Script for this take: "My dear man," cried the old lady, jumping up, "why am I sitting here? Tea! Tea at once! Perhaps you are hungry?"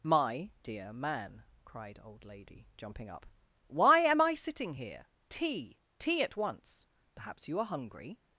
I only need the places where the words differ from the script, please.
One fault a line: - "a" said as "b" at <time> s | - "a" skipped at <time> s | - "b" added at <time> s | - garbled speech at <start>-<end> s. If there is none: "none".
- "the" skipped at 2.0 s